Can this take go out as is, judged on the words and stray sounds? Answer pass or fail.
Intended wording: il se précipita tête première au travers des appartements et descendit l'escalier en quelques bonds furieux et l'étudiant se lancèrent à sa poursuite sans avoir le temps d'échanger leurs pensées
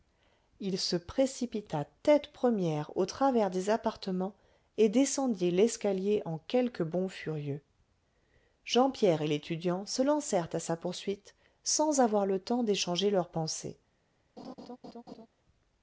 fail